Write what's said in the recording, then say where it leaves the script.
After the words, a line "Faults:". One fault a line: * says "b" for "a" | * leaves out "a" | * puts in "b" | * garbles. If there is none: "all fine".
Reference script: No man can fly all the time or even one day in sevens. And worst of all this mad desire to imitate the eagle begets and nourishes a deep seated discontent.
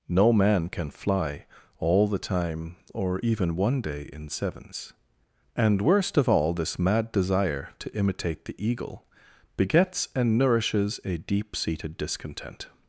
No man can fly all the time or even one day in sevens. And worst of all this mad desire to imitate the eagle begets and nourishes a deep seated discontent.
Faults:
all fine